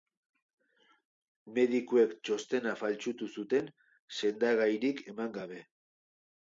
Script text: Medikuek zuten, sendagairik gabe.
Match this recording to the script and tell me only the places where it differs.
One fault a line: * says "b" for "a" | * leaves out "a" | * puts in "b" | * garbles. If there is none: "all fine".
* puts in "txostena faltsutu"
* puts in "eman"